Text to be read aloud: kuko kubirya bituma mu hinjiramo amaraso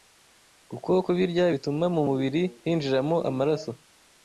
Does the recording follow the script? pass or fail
fail